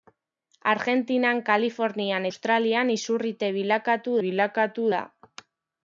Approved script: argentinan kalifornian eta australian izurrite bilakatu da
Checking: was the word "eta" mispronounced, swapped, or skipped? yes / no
yes